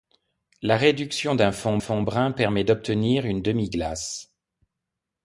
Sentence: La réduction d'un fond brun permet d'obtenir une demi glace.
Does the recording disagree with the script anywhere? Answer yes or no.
yes